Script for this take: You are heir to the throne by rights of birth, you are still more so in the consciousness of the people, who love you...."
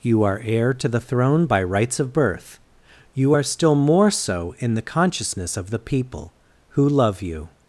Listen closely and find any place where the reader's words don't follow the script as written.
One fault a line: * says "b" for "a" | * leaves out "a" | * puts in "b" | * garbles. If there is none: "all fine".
all fine